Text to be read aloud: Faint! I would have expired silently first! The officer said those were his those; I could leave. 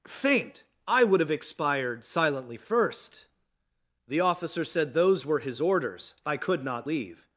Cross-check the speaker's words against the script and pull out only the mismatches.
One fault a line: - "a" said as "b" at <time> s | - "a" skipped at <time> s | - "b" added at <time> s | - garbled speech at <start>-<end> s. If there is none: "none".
- "those" said as "orders" at 5.6 s
- "not" added at 6.6 s